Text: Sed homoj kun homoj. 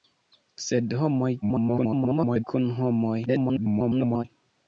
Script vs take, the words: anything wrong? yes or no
yes